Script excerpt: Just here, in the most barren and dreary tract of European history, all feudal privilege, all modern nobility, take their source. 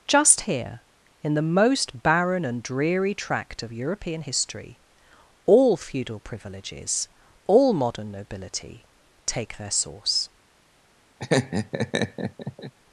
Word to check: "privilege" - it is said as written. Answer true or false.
false